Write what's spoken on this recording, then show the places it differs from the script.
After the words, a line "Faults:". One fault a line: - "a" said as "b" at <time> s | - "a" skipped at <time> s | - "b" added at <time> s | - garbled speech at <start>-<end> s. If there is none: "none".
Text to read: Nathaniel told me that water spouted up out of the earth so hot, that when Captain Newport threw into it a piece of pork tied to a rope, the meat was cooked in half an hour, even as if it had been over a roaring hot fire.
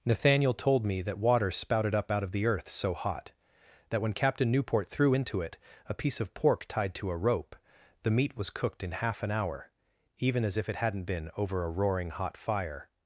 Nathaniel told me that water spouted up out of the earth so hot, that when Captain Newport threw into it a piece of pork tied to a rope, the meat was cooked in half an hour, even as if it hadn't been over a roaring hot fire.
Faults:
- "had" said as "hadn't" at 10.8 s